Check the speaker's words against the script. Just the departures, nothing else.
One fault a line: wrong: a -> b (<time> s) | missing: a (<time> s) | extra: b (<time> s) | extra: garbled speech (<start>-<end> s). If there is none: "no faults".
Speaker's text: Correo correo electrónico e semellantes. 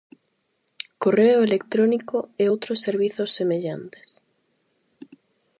missing: correo (1.4 s)
extra: outros servizos (2.5 s)